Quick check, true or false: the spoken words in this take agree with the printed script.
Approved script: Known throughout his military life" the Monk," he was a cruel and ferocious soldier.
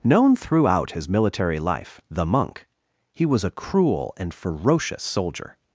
true